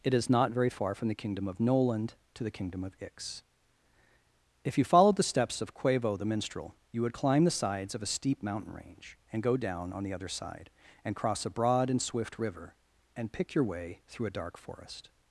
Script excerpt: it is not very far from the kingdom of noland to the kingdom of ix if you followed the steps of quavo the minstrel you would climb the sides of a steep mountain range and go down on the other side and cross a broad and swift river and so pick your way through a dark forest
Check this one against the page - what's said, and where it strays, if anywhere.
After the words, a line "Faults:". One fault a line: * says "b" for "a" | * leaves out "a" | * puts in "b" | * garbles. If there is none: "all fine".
it is not very far from the kingdom of noland to the kingdom of ix if you followed the steps of quavo the minstrel you would climb the sides of a steep mountain range and go down on the other side and cross a broad and swift river and pick your way through a dark forest
Faults:
* leaves out "so"